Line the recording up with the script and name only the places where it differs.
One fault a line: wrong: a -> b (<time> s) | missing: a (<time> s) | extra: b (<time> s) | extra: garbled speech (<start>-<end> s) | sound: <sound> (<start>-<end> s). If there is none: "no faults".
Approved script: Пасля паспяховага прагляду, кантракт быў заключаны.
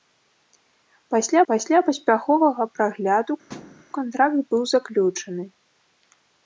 extra: пасля (1.5 s)
sound: thud (3.5-3.8 s)